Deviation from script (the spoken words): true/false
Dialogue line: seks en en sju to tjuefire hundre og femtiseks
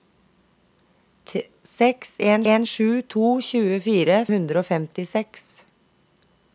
false